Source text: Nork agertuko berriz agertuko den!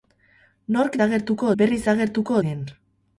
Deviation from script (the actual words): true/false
false